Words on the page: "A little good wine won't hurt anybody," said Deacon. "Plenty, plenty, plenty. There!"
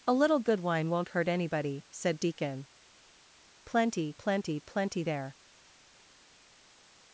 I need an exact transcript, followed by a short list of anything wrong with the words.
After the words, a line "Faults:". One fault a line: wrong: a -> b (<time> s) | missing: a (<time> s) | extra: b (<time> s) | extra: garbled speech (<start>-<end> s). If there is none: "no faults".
"A little good wine won't hurt anybody," said Deacon. "Plenty, plenty, plenty. There!"
Faults:
no faults